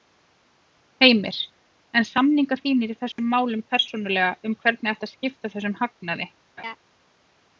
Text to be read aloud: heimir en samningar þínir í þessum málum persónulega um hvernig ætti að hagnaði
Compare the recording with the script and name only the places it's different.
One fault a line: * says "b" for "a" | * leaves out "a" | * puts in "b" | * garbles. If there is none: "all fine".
* puts in "skipta þessum"